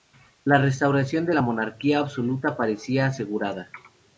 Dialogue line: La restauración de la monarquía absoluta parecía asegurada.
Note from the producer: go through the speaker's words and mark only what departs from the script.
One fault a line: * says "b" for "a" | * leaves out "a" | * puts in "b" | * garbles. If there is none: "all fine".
all fine